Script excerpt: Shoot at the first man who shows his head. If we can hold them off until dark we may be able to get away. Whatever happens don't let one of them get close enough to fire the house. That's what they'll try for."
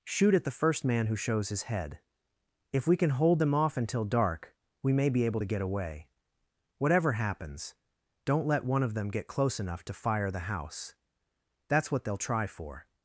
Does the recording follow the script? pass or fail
pass